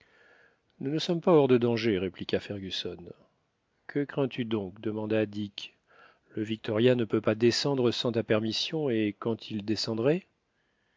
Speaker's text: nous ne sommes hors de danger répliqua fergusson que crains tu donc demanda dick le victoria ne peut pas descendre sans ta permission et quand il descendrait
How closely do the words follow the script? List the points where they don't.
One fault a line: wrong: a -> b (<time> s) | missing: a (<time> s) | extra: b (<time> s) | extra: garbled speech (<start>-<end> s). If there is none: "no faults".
extra: pas (1.2 s)